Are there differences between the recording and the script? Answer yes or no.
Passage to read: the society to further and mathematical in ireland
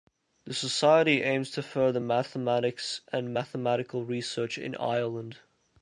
yes